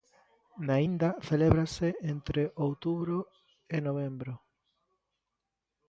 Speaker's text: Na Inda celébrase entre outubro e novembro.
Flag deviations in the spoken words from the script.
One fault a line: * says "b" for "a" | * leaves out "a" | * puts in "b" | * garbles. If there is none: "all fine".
all fine